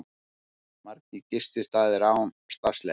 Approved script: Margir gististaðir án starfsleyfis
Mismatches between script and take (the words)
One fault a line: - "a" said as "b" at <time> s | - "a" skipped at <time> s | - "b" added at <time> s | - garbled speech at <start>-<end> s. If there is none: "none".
none